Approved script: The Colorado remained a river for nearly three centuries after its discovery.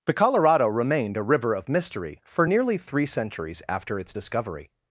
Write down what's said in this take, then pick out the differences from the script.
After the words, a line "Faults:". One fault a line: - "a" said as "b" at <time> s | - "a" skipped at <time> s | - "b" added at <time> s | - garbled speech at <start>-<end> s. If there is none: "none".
The Colorado remained a river of mystery for nearly three centuries after its discovery.
Faults:
- "of mystery" added at 1.5 s